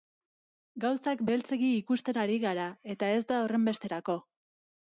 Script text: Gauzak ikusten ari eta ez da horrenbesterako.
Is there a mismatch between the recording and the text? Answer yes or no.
yes